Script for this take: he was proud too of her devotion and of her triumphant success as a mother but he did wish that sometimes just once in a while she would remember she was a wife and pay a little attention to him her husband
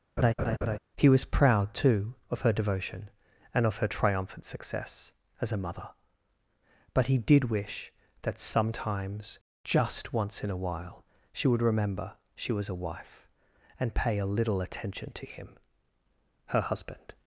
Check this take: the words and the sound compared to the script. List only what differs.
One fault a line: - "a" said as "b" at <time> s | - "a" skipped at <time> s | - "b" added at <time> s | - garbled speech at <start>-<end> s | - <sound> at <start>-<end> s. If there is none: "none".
- laugh at 0.2-0.8 s